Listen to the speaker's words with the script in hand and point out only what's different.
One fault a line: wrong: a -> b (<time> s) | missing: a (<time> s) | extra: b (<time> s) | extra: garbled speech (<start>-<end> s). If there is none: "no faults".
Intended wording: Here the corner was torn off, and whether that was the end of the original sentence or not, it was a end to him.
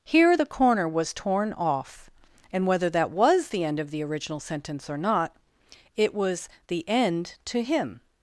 wrong: a -> the (6.7 s)